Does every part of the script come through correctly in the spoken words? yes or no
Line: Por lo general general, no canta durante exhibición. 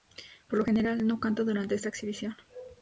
no